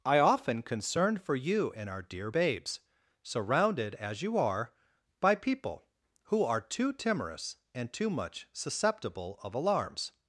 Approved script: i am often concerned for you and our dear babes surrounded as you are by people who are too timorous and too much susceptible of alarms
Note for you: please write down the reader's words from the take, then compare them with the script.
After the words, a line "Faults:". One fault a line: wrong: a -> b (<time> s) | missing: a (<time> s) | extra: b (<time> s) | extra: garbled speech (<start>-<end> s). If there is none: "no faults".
i often concerned for you and our dear babes surrounded as you are by people who are too timorous and too much susceptible of alarms
Faults:
missing: am (0.2 s)